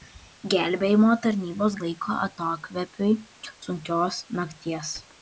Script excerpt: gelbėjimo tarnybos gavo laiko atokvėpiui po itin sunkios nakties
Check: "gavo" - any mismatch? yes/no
yes